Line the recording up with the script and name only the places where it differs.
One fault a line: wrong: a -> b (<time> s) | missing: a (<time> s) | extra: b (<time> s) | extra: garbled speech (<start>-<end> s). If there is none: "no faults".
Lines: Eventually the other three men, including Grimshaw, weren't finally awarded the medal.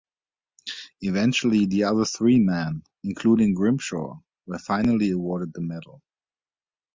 wrong: weren't -> were (4.5 s)